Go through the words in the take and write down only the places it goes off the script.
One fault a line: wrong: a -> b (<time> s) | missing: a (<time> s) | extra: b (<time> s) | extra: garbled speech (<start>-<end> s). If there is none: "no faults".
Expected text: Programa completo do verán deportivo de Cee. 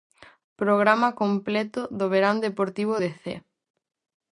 no faults